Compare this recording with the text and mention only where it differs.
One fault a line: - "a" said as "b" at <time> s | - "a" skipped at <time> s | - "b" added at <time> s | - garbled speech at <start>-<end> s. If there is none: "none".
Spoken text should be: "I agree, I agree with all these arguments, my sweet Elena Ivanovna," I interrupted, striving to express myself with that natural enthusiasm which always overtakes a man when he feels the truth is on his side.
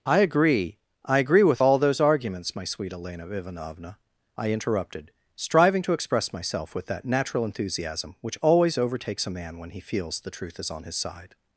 - "these" said as "those" at 1.8 s